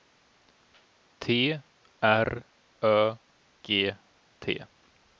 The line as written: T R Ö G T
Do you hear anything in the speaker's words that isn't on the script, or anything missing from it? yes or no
no